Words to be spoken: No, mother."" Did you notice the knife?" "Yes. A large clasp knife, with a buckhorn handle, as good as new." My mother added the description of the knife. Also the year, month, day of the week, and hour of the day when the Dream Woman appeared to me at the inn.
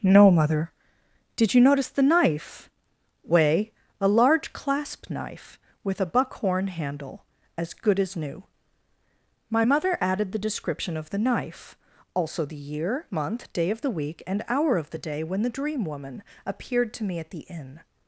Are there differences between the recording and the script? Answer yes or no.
yes